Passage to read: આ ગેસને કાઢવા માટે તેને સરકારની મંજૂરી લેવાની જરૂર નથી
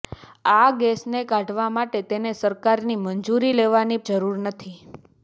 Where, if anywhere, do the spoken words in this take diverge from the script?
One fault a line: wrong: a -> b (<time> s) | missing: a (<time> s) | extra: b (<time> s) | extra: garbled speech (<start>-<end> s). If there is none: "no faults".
no faults